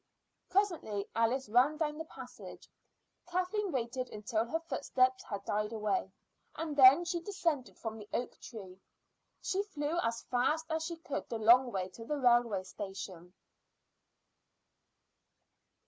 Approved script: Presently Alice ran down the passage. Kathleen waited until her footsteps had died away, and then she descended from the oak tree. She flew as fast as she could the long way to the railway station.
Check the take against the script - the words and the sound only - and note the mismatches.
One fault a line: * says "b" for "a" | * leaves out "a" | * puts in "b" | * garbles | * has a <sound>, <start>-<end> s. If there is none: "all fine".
all fine